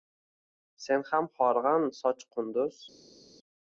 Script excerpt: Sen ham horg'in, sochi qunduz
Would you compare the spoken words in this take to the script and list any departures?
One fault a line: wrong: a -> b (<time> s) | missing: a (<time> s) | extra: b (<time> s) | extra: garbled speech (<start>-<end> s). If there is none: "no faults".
no faults